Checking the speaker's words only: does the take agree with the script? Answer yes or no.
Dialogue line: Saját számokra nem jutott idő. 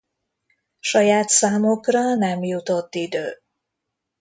yes